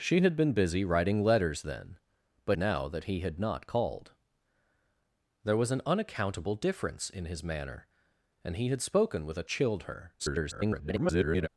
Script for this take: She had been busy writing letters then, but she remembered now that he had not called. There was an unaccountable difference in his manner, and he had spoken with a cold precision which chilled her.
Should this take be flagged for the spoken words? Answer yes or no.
yes